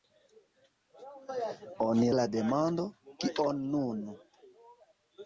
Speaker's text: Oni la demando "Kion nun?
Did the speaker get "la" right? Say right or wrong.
right